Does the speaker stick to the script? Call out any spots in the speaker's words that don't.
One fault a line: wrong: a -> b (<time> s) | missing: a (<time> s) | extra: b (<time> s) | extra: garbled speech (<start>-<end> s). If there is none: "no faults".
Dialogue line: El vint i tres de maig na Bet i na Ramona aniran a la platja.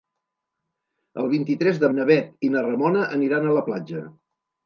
missing: maig (1.9 s)